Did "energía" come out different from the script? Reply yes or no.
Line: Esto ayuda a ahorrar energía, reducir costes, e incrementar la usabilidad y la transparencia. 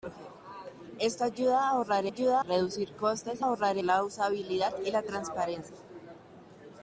yes